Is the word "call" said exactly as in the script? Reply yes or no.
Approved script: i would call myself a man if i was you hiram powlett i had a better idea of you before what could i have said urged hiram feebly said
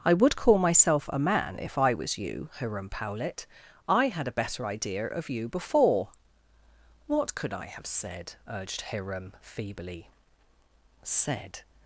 yes